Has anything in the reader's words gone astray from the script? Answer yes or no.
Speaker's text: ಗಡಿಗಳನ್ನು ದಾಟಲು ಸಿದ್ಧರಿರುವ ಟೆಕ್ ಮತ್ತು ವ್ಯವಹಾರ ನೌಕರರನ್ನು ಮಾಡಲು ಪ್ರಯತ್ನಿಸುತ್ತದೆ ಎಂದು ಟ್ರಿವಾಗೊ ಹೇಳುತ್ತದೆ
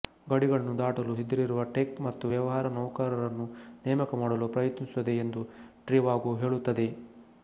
yes